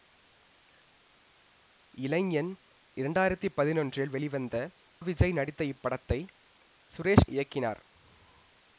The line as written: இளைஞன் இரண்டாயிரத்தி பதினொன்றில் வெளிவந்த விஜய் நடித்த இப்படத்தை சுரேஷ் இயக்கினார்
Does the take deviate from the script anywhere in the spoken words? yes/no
no